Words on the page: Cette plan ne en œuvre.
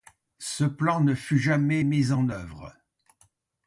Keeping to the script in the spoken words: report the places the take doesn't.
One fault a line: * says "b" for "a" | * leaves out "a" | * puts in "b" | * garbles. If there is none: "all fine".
* says "Ce" for "Cette"
* puts in "fut jamais mis"